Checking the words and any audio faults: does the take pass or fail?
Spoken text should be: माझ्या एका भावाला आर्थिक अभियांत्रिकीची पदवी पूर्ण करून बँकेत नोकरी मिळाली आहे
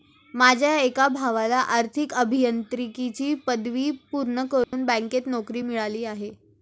fail